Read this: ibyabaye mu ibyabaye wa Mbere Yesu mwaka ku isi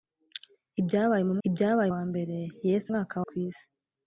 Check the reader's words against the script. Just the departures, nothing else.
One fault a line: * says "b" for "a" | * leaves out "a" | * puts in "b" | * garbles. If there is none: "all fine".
all fine